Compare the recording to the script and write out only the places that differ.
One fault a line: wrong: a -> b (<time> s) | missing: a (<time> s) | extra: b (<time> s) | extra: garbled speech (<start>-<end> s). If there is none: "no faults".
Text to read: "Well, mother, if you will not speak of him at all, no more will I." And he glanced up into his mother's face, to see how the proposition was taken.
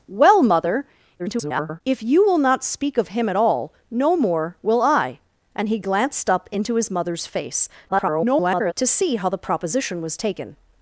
extra: garbled speech (1.2-1.8 s)
extra: garbled speech (7.9-8.7 s)